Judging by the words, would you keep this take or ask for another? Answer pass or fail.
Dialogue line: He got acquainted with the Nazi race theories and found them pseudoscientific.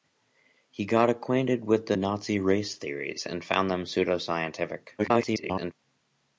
fail